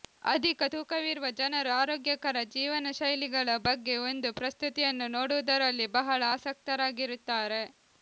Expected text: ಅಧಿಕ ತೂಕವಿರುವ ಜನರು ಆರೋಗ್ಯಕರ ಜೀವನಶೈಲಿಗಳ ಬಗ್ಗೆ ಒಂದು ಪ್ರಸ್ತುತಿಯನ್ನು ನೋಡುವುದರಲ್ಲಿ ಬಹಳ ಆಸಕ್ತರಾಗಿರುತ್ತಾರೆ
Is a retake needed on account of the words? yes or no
no